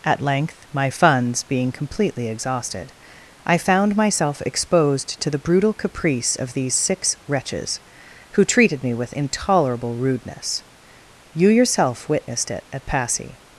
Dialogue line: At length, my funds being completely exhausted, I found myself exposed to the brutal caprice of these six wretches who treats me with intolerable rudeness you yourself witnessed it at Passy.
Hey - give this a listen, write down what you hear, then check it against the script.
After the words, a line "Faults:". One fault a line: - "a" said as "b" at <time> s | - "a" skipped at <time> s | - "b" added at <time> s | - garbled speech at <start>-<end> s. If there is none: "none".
At length, my funds being completely exhausted, I found myself exposed to the brutal caprice of these six wretches who treated me with intolerable rudeness you yourself witnessed it at Passy.
Faults:
- "treats" said as "treated" at 8.4 s